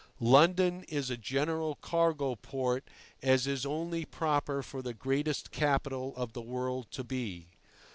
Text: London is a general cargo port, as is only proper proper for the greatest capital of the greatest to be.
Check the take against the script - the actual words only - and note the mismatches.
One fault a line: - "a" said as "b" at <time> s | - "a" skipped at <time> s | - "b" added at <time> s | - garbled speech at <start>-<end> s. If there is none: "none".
- "proper" skipped at 4.6 s
- "greatest" said as "world" at 6.4 s